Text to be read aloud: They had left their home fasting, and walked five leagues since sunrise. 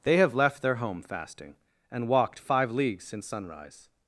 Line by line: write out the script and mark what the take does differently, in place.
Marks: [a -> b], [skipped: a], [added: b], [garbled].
They [had -> have] left their home fasting, and walked five leagues since sunrise.